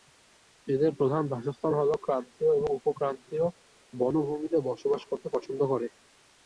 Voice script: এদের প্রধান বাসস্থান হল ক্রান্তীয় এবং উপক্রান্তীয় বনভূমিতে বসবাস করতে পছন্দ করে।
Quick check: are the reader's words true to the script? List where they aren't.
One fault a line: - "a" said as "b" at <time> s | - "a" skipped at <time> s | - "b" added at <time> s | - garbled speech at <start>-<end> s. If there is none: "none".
none